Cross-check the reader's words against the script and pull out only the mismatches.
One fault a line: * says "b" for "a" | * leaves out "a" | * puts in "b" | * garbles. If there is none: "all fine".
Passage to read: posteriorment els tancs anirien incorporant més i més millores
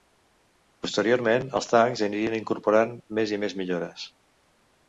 all fine